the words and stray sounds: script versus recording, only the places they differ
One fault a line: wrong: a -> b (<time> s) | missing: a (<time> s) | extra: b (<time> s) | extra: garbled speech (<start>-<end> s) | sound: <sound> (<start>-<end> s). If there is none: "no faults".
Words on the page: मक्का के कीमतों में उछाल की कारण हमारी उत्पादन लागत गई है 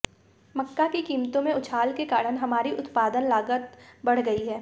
wrong: के -> की (0.9 s)
wrong: की -> के (1.9 s)
extra: बढ़ (4.1 s)